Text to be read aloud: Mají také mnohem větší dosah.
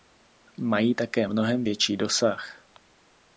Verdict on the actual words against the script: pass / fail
pass